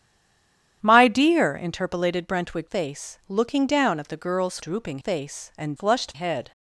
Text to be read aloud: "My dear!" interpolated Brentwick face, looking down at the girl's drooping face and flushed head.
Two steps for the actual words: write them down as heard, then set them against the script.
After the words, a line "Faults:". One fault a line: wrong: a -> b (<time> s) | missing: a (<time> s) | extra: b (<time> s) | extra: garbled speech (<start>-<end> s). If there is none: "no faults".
"My dear!" interpolated Brentwick face, looking down at the girl's drooping face and flushed head.
Faults:
no faults